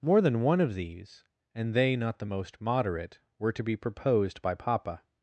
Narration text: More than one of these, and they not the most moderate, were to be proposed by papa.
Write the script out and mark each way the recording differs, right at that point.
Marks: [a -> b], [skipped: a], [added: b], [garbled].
More than one of these, and they not the most moderate, were to be proposed by papa.